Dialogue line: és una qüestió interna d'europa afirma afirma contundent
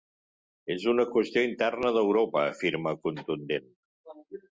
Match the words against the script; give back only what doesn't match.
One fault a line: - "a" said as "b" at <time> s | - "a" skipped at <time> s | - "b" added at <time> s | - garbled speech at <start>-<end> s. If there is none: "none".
- "afirma" skipped at 3.0 s